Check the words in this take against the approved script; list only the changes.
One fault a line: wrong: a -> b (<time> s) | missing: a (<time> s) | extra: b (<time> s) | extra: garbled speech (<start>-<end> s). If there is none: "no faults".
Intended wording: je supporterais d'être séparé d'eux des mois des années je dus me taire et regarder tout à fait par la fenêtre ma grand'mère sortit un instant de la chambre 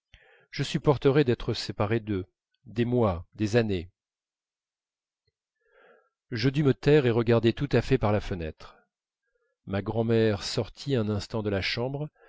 no faults